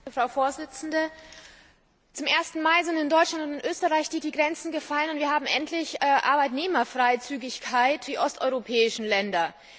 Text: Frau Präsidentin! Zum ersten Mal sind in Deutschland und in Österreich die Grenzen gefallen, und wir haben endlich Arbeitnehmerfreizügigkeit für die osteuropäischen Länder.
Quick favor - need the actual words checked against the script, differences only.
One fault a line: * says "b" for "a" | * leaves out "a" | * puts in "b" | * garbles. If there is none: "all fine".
* puts in "die"
* leaves out "für"